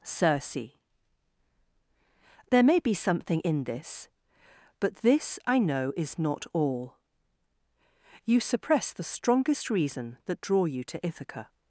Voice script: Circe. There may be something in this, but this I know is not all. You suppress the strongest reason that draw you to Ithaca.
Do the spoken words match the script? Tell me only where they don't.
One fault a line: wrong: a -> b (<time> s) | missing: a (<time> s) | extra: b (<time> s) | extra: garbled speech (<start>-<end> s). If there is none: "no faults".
no faults